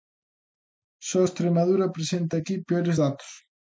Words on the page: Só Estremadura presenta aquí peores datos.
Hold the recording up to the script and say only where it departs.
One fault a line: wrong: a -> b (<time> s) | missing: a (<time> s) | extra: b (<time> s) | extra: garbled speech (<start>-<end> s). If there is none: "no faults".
no faults